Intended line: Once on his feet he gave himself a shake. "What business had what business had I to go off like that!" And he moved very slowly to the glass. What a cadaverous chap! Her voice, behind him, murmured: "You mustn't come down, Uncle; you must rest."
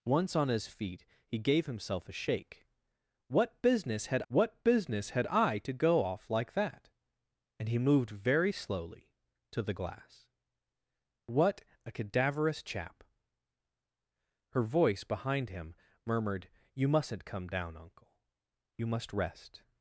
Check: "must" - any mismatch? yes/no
no